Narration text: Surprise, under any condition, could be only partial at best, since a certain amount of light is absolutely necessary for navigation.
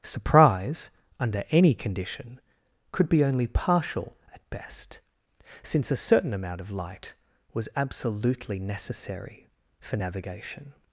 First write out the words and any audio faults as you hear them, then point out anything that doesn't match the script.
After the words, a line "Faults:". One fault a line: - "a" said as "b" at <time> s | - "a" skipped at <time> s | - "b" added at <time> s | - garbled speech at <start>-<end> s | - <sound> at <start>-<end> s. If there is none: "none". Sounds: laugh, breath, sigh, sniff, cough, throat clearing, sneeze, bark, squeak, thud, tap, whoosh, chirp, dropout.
Surprise, under any condition, could be only partial at best, since a certain amount of light was absolutely necessary for navigation.
Faults:
- "is" said as "was" at 7.5 s